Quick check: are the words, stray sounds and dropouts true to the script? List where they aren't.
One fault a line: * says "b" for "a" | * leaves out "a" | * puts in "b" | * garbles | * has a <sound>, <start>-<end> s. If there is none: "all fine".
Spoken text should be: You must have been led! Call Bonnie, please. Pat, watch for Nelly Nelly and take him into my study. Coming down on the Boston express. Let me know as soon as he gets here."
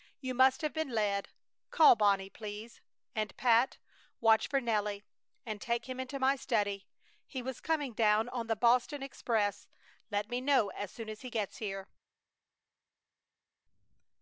* puts in "And"
* leaves out "Nelly"
* puts in "He was"